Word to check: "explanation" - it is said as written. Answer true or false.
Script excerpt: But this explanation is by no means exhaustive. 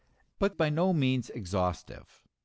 false